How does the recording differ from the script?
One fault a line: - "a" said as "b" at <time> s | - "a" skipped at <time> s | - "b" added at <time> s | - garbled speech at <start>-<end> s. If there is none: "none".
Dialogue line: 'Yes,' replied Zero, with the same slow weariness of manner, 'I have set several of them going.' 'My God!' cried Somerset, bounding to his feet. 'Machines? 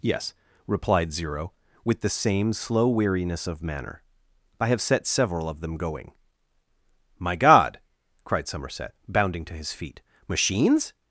none